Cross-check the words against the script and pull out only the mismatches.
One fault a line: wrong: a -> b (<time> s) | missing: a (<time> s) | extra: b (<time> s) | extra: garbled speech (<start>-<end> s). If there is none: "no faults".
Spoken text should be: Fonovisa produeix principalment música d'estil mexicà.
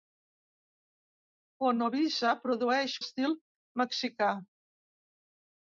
missing: principalment música (3.0 s)